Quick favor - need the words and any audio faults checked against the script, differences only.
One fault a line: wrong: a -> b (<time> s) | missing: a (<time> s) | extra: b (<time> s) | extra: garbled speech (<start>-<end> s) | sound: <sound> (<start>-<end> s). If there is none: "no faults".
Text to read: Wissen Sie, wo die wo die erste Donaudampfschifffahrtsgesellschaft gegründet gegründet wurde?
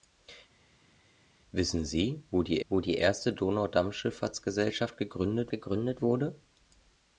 no faults